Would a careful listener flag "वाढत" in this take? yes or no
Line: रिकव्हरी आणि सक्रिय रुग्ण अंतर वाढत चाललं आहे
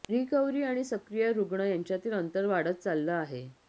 no